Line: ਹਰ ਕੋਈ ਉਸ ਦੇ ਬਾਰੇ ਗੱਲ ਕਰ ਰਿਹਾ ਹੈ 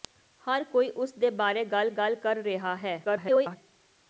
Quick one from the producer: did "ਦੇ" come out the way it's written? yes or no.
yes